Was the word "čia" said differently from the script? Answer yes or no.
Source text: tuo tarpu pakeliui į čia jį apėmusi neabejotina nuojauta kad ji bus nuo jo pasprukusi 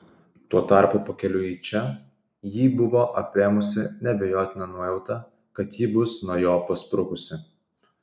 no